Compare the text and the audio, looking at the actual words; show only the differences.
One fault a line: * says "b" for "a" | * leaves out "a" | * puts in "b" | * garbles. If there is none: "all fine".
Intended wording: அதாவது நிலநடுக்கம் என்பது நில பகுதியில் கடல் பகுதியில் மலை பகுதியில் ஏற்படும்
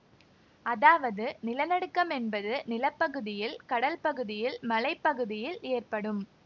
all fine